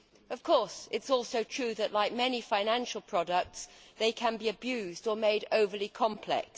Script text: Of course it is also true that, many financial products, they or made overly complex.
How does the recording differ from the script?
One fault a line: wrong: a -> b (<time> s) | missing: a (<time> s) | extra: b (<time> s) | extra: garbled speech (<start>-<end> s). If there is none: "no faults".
extra: like (1.9 s)
extra: can be abused (4.1 s)